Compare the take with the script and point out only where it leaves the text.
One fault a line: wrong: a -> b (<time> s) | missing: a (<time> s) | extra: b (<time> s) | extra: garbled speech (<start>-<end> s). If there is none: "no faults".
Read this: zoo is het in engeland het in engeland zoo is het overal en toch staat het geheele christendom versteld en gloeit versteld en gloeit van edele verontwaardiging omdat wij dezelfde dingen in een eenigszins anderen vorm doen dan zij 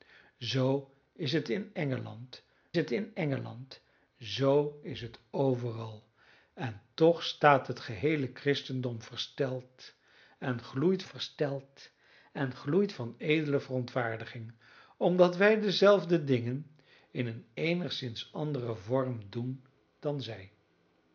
no faults